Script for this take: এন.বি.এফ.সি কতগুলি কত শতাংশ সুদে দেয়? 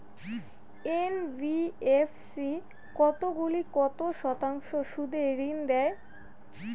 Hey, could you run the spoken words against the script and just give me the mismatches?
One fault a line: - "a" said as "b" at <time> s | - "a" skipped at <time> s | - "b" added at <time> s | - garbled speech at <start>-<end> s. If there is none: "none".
- "ঋন" added at 5.4 s